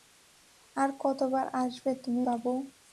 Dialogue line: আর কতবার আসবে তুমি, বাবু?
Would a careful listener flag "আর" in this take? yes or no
no